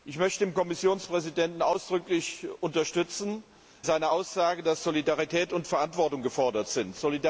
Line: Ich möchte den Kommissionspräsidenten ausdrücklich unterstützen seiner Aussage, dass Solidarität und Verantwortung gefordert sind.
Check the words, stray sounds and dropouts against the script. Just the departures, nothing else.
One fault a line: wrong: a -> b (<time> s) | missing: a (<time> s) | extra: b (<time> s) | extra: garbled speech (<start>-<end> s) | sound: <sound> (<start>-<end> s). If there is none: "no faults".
no faults